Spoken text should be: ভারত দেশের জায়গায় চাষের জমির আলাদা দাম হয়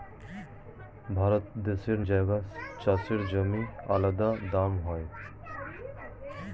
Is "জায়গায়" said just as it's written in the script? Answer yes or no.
yes